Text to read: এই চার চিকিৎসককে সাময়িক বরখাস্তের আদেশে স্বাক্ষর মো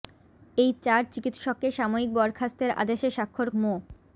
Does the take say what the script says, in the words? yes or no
yes